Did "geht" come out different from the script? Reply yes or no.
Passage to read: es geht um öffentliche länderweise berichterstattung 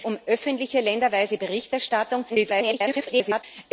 yes